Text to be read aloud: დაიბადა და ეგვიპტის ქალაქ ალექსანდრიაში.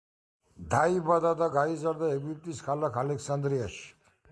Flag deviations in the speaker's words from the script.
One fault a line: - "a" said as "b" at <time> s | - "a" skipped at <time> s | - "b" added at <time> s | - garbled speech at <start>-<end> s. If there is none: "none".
- "გაიზარდა" added at 1.6 s